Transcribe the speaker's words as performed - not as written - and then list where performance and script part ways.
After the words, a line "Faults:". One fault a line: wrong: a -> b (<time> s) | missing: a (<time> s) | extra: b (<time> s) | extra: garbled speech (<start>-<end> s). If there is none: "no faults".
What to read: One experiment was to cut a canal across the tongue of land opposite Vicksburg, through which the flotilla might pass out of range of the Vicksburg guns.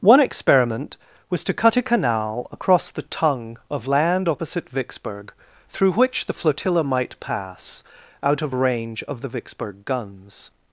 One experiment was to cut a canal across the tongue of land opposite Vicksburg, through which the flotilla might pass out of range of the Vicksburg guns.
Faults:
no faults